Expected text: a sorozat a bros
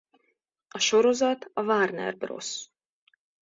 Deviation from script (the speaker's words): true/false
true